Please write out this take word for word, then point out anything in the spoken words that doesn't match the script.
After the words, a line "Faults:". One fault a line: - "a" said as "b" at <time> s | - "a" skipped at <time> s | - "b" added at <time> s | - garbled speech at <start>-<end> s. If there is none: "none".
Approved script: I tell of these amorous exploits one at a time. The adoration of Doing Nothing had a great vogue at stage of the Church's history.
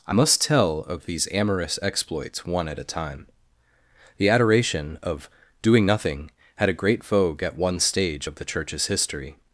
I must tell of these amorous exploits one at a time. The adoration of Doing Nothing had a great vogue at one stage of the Church's history.
Faults:
- "must" added at 0.1 s
- "one" added at 7.5 s